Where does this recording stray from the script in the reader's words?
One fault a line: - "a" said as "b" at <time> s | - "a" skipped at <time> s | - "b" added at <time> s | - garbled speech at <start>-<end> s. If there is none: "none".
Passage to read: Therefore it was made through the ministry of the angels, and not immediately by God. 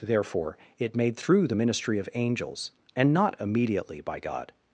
- "was" skipped at 0.9 s
- "the" skipped at 2.1 s